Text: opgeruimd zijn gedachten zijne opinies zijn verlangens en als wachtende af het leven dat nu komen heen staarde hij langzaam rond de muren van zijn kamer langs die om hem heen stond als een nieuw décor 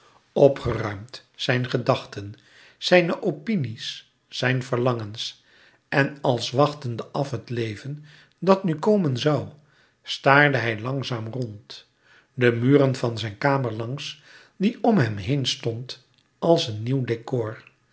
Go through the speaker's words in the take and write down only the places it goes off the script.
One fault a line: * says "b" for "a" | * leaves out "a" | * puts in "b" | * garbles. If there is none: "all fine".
* says "zoû" for "heen"